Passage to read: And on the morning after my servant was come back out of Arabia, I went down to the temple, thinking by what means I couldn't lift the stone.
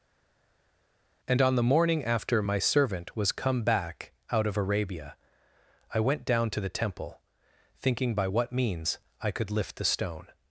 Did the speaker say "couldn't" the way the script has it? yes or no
no